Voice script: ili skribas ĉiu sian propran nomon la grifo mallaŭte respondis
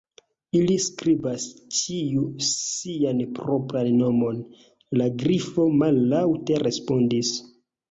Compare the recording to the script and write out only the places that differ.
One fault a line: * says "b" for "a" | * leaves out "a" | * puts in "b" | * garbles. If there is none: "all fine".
all fine